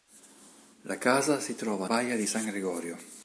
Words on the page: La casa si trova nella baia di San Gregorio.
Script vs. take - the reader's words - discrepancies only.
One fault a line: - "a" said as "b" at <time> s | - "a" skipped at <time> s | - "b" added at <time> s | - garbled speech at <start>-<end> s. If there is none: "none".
- "nella" skipped at 1.9 s